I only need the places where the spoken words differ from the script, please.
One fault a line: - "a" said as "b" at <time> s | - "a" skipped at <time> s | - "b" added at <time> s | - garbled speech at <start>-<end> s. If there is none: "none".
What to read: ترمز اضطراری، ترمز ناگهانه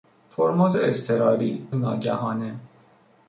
- "ترمز" skipped at 1.7 s